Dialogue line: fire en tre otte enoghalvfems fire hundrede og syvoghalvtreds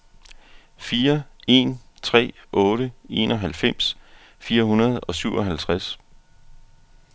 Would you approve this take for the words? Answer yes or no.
yes